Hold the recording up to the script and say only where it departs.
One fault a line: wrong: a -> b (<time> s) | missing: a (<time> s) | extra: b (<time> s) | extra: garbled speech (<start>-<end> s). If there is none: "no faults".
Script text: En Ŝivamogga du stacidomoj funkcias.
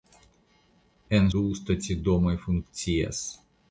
missing: Ŝivamogga (1.3 s)